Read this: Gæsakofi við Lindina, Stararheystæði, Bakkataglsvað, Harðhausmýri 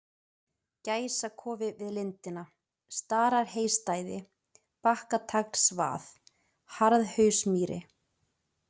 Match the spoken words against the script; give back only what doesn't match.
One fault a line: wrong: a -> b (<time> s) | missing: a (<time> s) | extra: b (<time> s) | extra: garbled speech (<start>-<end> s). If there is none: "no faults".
no faults